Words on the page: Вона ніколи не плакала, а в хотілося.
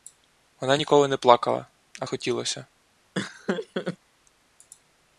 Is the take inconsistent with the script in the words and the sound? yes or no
yes